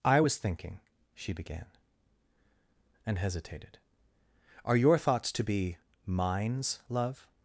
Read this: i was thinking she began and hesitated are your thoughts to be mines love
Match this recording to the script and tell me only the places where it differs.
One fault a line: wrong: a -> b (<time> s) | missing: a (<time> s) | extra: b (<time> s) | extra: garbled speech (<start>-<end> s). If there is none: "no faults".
no faults